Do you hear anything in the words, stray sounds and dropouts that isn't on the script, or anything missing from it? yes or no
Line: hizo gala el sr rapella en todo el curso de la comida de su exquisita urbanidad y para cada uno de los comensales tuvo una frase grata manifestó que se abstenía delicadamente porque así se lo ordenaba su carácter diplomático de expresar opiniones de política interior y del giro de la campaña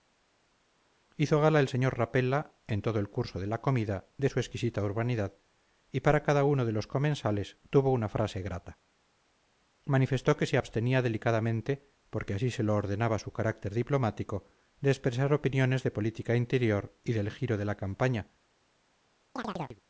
yes